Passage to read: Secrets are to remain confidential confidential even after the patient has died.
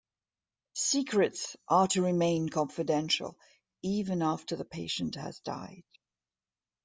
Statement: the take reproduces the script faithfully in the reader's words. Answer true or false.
false